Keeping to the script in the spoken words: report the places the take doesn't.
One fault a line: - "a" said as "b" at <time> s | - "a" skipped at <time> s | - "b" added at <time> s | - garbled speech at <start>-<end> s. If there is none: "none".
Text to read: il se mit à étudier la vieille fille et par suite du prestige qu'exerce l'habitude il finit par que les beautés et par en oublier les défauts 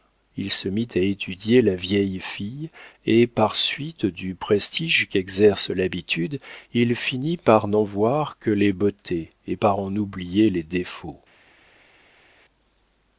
- "n'en voir" added at 7.7 s